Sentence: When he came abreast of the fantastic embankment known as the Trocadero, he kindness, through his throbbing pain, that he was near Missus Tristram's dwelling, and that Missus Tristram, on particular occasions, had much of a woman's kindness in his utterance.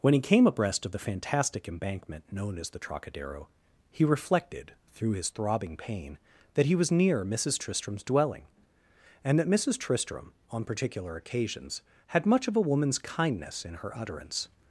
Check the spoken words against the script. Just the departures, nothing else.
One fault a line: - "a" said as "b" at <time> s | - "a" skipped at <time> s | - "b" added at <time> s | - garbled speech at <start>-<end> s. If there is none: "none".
- "kindness" said as "reflected" at 4.0 s
- "his" said as "her" at 13.8 s